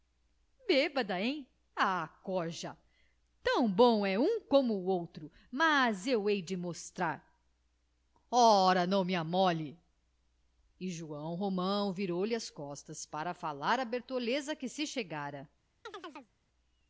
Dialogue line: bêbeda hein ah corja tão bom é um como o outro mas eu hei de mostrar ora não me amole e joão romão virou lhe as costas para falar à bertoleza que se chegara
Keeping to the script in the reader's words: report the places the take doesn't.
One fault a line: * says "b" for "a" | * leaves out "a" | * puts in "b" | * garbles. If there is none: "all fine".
all fine